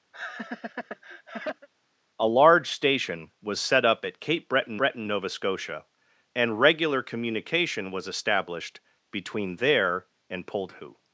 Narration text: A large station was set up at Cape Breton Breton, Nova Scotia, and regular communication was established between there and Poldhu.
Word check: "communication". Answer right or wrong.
right